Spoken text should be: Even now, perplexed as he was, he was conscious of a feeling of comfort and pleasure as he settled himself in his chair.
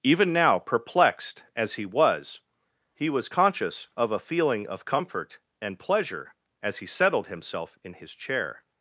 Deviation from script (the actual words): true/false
false